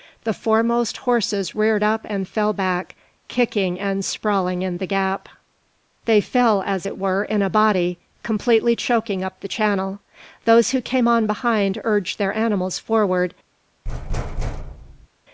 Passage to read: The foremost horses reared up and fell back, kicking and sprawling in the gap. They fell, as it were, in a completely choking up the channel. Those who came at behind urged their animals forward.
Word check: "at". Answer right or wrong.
wrong